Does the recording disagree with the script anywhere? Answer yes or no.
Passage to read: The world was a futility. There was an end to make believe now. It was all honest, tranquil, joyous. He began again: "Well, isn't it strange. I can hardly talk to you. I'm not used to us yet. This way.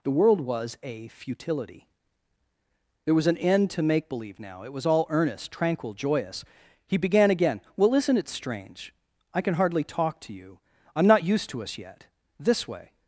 yes